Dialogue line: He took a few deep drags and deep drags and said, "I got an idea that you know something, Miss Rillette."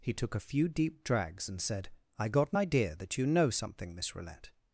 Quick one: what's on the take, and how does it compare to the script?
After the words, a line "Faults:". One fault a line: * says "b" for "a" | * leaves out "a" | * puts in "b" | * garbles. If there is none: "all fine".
He took a few deep drags and said, "I got an idea that you know something, Miss Rillette."
Faults:
* leaves out "deep drags and"